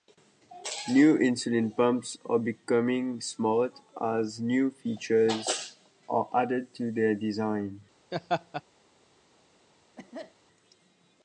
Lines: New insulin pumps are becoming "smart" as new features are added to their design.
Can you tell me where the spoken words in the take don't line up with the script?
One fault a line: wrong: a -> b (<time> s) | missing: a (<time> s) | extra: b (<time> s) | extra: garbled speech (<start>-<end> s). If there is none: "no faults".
no faults